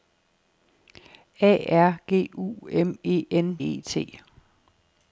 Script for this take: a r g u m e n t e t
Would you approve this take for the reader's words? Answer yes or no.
no